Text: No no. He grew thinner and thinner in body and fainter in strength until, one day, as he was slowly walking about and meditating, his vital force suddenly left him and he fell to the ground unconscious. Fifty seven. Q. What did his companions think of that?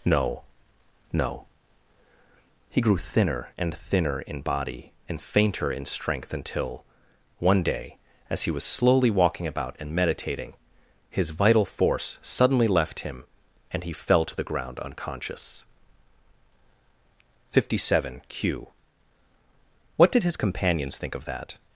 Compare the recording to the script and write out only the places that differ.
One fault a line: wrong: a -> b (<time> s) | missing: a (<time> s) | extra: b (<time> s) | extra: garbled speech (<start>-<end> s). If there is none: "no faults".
no faults